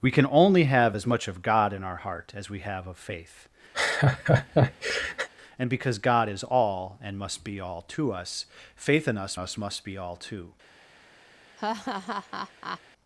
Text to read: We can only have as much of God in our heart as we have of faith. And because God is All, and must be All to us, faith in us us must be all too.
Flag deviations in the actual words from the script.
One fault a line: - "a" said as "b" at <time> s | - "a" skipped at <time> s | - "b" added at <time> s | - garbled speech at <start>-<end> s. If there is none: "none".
none